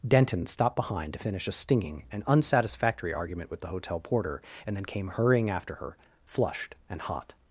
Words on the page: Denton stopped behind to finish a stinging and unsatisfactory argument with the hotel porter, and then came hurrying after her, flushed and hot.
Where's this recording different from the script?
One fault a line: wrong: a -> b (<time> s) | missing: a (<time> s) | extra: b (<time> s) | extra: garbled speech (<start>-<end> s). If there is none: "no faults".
no faults